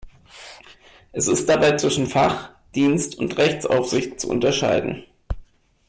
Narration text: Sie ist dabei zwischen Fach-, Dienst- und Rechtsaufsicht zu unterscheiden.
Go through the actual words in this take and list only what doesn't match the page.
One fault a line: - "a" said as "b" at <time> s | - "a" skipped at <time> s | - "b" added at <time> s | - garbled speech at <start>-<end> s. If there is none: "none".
- "Sie" said as "Es" at 1.1 s